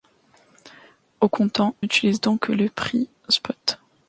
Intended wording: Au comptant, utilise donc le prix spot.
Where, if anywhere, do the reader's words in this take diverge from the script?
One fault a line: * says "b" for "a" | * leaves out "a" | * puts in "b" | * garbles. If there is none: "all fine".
all fine